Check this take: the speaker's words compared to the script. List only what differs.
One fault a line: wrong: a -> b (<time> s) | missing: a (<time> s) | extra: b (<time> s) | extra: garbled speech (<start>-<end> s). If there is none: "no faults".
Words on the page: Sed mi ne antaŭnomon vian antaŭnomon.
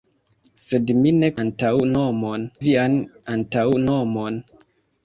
no faults